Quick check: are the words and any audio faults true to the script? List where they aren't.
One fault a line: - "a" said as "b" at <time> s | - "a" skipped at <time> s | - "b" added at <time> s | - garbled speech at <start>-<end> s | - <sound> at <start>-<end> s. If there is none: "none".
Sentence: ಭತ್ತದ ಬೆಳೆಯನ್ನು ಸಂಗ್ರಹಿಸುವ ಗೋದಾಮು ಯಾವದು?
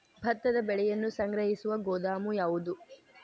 none